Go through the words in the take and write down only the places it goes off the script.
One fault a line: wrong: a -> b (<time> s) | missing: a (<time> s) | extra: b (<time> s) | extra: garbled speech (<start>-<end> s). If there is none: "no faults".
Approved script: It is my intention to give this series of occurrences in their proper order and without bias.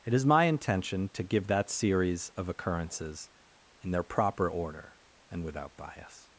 wrong: this -> that (1.5 s)